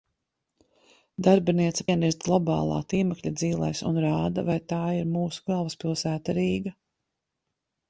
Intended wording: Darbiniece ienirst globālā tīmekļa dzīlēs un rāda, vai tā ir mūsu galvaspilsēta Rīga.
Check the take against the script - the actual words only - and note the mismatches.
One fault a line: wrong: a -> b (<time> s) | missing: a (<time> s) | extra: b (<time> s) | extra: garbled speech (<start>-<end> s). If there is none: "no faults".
no faults